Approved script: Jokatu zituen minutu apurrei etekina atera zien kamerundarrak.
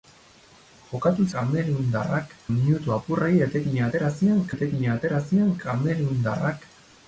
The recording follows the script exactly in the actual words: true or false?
false